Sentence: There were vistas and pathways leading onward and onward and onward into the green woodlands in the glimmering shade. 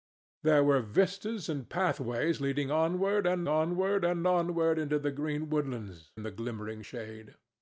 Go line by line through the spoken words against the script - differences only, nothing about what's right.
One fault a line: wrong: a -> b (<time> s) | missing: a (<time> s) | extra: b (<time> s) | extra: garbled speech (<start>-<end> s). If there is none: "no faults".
no faults